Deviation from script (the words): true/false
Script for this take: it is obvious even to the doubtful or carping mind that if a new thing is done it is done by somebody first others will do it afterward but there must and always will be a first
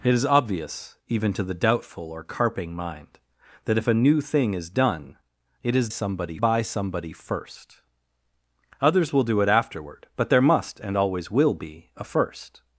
true